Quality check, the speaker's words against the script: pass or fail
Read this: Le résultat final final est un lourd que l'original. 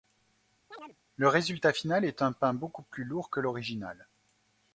fail